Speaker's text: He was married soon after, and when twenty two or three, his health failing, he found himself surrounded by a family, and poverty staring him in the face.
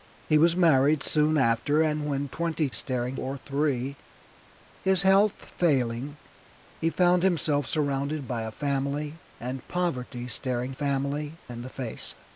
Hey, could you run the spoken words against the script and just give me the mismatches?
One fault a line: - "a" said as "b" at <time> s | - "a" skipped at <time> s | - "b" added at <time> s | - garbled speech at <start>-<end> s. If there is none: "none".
- "two" said as "staring" at 2.7 s
- "him" said as "family" at 10.7 s